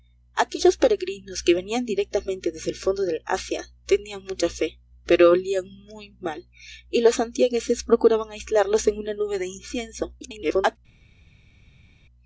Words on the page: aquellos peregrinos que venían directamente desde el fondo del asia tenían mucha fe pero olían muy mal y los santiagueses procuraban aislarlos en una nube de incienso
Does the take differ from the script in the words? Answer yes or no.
yes